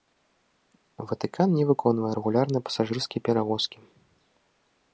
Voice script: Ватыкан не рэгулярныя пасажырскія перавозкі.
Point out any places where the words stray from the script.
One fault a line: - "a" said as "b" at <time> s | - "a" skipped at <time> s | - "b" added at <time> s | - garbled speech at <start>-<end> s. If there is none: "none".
- "выконвае" added at 1.7 s